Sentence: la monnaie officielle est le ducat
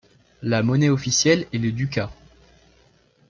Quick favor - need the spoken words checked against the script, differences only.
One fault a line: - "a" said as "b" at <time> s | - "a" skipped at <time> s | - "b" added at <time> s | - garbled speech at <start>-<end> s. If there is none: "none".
none